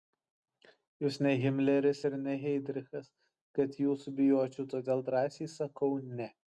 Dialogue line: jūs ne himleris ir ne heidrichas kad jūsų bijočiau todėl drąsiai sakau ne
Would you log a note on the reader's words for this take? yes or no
no